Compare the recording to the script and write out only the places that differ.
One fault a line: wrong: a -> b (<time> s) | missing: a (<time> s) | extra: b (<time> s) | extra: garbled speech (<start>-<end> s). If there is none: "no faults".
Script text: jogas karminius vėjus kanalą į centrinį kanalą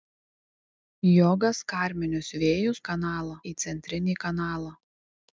no faults